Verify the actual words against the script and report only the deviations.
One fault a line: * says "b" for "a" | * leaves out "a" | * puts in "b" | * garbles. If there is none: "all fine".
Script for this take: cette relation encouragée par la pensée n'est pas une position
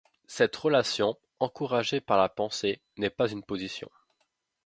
all fine